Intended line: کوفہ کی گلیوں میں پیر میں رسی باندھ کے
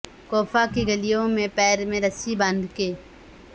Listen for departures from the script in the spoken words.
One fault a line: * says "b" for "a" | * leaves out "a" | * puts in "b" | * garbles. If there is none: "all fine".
all fine